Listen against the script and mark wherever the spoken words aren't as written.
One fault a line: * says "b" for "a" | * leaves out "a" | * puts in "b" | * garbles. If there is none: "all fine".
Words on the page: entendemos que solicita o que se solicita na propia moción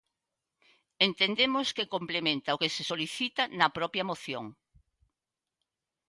* says "complementa" for "solicita"